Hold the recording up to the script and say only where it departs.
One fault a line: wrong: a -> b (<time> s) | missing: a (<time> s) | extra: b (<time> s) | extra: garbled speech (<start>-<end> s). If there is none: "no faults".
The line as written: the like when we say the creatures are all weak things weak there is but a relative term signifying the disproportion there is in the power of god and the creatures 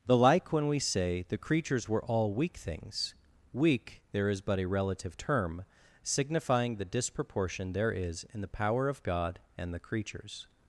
wrong: are -> were (1.9 s)